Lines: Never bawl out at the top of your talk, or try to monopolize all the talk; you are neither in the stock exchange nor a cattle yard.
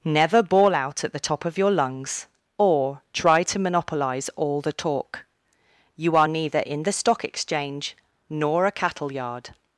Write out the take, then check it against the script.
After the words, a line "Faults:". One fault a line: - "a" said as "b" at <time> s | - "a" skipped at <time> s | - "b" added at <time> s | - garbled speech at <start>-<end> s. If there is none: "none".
Never bawl out at the top of your lungs, or try to monopolize all the talk; you are neither in the stock exchange nor a cattle yard.
Faults:
- "talk" said as "lungs" at 1.7 s